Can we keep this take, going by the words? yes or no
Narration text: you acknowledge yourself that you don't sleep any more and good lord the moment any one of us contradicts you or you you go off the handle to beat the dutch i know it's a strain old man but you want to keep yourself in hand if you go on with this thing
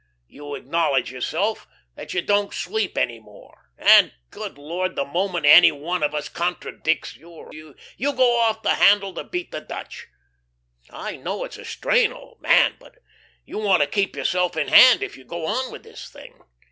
yes